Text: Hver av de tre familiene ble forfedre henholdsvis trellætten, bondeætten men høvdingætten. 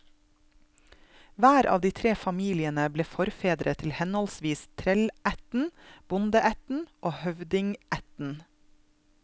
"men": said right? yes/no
no